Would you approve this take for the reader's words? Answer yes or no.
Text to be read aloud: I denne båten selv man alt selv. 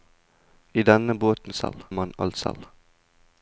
yes